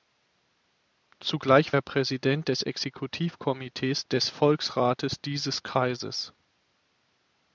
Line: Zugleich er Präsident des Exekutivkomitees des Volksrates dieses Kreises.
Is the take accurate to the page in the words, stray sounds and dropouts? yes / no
yes